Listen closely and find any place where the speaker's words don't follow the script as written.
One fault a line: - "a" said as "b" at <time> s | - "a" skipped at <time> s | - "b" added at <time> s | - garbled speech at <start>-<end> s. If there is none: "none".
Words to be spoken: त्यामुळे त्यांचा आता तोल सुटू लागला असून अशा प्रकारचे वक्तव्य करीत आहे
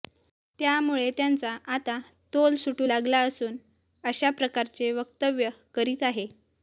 none